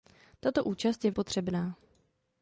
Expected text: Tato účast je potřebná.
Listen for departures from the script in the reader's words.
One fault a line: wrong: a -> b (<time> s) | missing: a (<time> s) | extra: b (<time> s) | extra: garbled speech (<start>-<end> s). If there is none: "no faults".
no faults